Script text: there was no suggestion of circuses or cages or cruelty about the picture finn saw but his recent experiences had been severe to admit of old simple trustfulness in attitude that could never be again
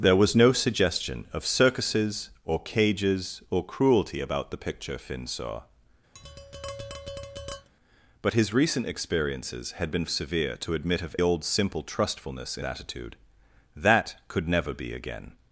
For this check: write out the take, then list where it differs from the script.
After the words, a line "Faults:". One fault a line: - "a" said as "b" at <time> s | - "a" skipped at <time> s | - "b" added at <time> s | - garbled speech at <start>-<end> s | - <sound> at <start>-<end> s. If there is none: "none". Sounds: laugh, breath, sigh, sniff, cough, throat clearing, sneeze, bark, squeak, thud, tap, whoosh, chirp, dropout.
there was no suggestion of circuses or cages or cruelty about the picture finn saw but his recent experiences had been severe to admit of old simple trustfulness in attitude that could never be again
Faults:
- tap at 6.1-7.7 s